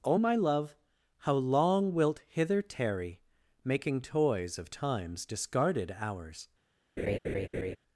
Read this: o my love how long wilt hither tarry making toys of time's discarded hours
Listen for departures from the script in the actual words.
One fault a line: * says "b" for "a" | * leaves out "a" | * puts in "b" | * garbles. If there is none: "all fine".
all fine